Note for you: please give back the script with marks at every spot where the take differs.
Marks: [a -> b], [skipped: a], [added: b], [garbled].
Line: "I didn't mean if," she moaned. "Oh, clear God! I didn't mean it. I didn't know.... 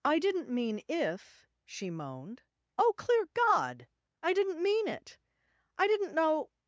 "I didn't mean if," she moaned. "Oh, clear God! I didn't mean it. I didn't know....